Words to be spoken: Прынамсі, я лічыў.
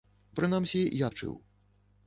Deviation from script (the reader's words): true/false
false